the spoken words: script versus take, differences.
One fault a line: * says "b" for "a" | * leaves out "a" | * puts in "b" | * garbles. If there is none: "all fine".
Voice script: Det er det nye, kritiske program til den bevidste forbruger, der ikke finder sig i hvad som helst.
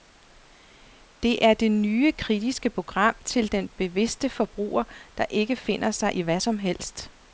all fine